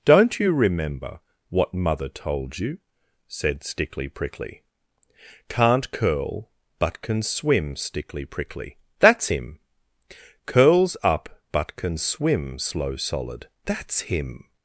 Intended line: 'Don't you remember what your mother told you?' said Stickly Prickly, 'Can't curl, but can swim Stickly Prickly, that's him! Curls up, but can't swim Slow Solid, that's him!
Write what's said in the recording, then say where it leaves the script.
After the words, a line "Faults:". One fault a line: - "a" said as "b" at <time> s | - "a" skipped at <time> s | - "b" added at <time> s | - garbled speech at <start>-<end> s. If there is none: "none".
'Don't you remember what mother told you?' said Stickly Prickly, 'Can't curl, but can swim Stickly Prickly, that's him! Curls up, but can swim Slow Solid, that's him!
Faults:
- "your" skipped at 1.7 s
- "can't" said as "can" at 11.7 s